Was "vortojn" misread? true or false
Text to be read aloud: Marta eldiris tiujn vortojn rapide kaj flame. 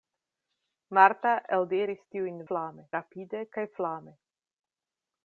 true